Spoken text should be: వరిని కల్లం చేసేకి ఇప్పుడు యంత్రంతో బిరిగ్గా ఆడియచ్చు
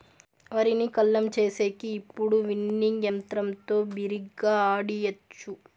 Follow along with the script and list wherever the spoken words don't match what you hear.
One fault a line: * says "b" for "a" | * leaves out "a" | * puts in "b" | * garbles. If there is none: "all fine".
* puts in "విన్నింగ్"